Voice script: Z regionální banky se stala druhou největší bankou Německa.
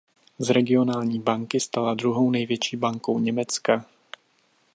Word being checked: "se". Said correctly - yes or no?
no